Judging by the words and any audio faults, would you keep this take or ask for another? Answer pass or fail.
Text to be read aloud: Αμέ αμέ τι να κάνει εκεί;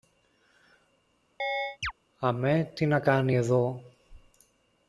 fail